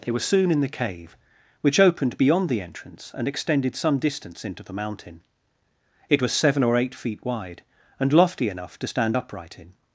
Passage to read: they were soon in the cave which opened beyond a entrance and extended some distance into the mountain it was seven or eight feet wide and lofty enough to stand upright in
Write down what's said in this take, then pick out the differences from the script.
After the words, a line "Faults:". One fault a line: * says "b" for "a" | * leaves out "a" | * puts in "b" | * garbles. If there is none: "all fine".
they were soon in the cave which opened beyond the entrance and extended some distance into the mountain it was seven or eight feet wide and lofty enough to stand upright in
Faults:
* says "the" for "a"